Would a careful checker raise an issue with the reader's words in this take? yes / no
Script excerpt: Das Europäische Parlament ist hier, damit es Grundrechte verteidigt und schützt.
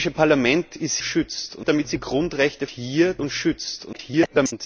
yes